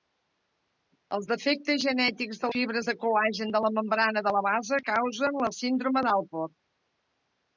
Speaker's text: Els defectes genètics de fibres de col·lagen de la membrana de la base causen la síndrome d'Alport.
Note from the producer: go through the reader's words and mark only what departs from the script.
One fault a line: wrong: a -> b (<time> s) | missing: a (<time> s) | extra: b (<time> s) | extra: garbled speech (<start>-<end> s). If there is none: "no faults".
no faults